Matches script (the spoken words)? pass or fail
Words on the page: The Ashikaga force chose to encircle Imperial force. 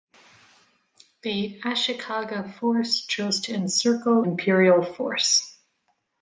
pass